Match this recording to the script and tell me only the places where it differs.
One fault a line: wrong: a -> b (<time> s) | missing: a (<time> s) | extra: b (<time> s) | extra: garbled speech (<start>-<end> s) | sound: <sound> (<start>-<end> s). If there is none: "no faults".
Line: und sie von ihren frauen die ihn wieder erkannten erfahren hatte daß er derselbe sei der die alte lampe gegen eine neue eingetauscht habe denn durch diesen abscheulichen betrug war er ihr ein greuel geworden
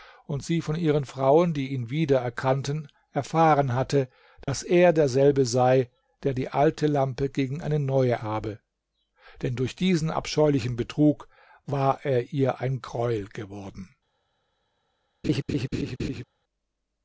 sound: dropout (4.4-4.5 s)
missing: eingetauscht (8.2 s)
sound: laugh (15.2-16.2 s)